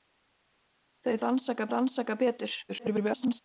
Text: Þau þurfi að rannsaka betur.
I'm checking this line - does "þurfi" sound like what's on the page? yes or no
no